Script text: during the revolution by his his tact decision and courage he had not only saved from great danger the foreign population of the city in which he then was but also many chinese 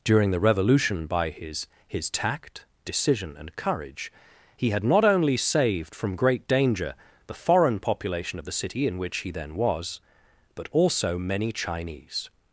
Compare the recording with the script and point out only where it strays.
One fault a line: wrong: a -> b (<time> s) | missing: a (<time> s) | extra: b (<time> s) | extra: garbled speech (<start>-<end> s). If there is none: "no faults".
no faults